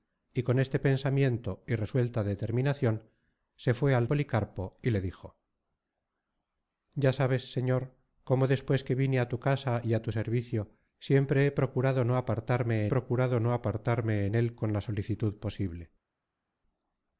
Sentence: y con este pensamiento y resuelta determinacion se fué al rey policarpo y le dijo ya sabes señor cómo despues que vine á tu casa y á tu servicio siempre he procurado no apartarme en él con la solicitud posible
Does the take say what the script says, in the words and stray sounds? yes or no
no